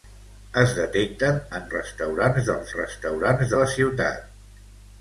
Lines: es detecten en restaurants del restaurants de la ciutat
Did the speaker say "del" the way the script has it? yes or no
yes